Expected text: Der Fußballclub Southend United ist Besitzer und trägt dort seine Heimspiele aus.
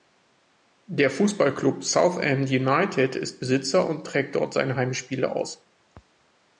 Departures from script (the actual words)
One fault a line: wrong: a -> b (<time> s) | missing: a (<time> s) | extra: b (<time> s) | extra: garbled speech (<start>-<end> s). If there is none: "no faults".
no faults